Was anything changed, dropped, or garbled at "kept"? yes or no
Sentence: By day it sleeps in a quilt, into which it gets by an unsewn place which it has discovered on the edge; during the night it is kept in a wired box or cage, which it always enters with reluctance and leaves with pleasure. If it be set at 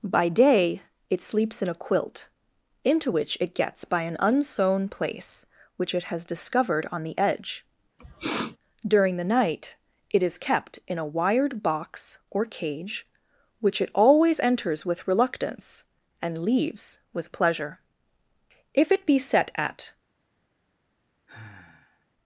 no